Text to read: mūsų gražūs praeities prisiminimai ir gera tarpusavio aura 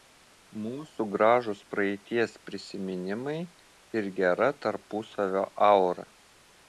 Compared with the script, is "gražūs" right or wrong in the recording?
right